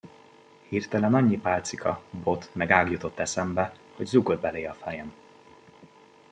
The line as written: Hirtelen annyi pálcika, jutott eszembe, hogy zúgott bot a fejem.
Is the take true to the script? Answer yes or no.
no